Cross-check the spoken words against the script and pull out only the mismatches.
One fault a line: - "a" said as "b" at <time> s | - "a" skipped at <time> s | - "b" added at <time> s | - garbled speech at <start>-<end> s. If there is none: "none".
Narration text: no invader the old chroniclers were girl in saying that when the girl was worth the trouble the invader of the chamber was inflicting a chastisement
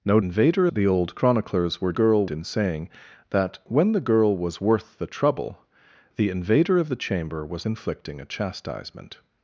none